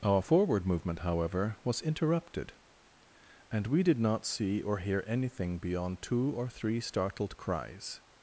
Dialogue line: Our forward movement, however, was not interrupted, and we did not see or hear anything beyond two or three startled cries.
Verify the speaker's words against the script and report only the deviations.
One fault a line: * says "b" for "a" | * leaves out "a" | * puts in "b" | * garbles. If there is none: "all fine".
* leaves out "not"